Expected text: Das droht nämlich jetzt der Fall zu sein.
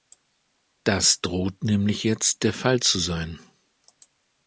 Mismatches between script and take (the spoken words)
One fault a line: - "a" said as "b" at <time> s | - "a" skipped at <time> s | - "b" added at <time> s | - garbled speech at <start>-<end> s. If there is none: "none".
none